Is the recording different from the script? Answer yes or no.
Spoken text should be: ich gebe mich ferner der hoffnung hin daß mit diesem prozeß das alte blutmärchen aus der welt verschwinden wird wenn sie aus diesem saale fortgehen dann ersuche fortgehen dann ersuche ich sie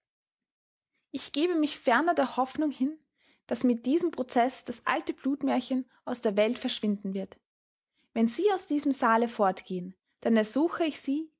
yes